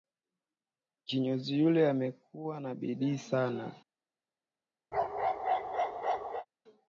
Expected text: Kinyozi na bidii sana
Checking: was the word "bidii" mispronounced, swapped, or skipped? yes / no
no